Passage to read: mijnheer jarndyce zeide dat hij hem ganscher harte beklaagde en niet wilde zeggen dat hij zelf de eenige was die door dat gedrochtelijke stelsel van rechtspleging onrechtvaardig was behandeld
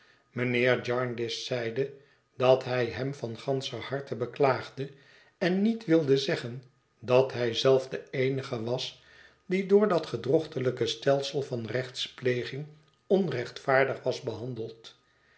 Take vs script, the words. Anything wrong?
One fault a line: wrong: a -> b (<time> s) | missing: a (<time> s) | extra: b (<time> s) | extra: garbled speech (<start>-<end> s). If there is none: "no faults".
extra: van (3.1 s)